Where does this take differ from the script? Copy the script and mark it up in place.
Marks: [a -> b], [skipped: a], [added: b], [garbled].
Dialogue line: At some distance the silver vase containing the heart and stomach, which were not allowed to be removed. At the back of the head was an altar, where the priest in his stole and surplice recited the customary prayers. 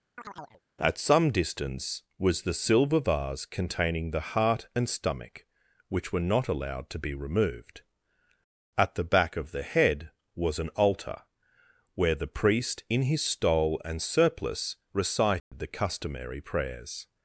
At some distance [added: was] the silver vase containing the heart and stomach, which were not allowed to be removed. At the back of the head was an altar, where the priest in his stole and surplice recited the customary prayers.